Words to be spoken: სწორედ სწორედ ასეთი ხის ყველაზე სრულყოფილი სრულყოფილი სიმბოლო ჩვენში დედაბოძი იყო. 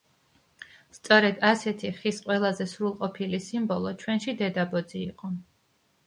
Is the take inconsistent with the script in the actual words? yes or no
yes